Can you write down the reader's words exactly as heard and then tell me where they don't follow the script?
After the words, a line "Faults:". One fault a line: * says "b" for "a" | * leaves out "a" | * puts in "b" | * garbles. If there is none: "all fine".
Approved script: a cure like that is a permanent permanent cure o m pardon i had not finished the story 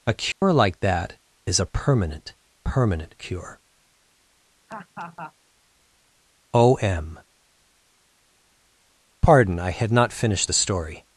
a cure like that is a permanent permanent cure o m pardon i had not finished the story
Faults:
all fine